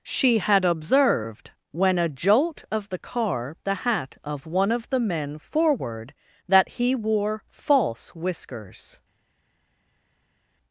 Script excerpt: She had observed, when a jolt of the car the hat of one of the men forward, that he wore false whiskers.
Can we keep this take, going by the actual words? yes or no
yes